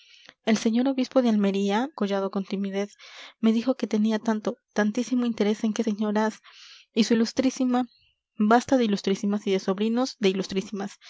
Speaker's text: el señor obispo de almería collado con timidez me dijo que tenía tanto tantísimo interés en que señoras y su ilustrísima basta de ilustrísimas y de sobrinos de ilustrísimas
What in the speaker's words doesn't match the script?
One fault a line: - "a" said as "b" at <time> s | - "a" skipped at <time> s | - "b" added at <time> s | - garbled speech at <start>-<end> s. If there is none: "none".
none